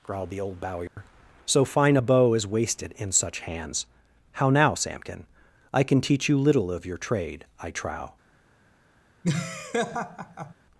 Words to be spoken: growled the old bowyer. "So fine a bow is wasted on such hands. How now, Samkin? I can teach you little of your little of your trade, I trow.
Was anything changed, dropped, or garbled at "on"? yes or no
yes